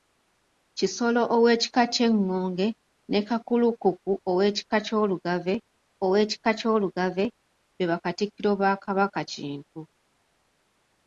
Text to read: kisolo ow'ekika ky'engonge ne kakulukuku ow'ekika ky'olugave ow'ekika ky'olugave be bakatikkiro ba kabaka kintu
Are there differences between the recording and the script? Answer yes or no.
no